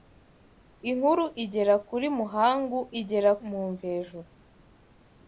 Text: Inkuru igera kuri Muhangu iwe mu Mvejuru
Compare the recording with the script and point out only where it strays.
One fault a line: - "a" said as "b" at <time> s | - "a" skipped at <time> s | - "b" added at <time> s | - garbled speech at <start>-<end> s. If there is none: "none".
- "iwe" said as "igera" at 3.0 s